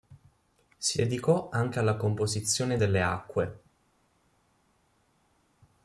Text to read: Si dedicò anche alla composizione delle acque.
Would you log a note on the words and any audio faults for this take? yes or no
no